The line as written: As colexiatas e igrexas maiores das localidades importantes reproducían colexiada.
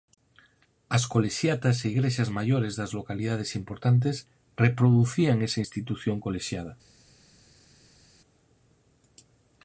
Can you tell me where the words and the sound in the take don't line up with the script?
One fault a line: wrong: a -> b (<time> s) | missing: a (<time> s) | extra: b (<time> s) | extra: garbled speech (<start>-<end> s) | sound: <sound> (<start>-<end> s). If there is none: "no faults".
extra: esa institución (5.5 s)